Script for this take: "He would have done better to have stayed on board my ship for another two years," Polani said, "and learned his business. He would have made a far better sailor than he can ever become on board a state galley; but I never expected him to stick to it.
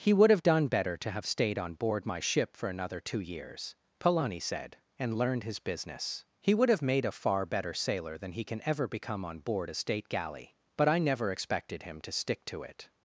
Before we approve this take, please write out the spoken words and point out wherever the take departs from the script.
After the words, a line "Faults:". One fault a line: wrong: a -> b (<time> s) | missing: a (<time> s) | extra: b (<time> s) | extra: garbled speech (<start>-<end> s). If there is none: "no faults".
"He would have done better to have stayed on board my ship for another two years," Polani said, "and learned his business. He would have made a far better sailor than he can ever become on board a state galley; but I never expected him to stick to it.
Faults:
no faults